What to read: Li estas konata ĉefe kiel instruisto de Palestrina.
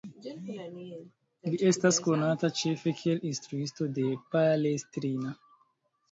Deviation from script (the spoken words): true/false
false